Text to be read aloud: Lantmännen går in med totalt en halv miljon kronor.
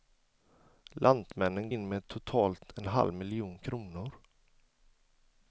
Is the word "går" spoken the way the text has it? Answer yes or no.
no